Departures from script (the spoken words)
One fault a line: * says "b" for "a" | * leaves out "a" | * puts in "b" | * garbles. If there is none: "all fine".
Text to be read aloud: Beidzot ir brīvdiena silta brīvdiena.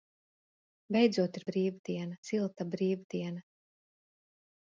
all fine